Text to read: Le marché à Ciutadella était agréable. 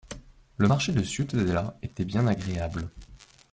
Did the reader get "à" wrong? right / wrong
wrong